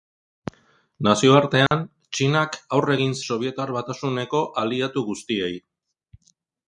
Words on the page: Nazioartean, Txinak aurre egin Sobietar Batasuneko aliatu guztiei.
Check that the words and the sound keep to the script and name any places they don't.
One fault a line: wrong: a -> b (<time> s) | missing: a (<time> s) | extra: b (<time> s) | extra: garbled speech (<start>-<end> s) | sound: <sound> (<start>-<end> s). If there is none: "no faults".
sound: dropout (1.7-1.7 s)